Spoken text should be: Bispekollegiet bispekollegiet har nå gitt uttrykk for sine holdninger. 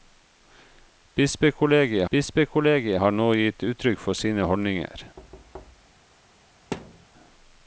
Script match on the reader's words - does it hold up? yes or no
yes